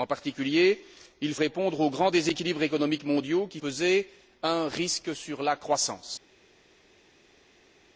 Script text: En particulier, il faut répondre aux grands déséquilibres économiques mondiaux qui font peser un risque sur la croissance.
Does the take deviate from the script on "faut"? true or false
true